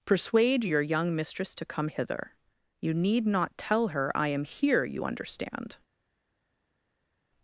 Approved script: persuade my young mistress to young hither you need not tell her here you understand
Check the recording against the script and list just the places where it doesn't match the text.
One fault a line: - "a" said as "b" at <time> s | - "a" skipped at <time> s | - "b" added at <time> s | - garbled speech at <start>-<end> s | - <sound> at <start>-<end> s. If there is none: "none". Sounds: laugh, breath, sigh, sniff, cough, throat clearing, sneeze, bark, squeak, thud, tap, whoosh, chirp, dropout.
- "my" said as "your" at 0.6 s
- "young" said as "come" at 1.6 s
- "i am" added at 4.1 s